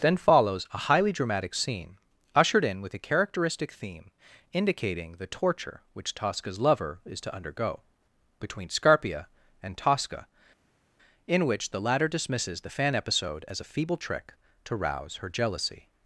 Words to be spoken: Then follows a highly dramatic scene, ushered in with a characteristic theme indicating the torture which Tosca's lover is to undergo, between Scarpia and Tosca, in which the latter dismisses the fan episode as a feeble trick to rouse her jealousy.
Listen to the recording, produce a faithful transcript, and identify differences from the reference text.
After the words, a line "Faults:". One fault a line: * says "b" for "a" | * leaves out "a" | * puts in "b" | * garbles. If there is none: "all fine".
Then follows a highly dramatic scene, ushered in with a characteristic theme indicating the torture which Tosca's lover is to undergo, between Scarpia and Tosca, in which the latter dismisses the fan episode as a feeble trick to rouse her jealousy.
Faults:
all fine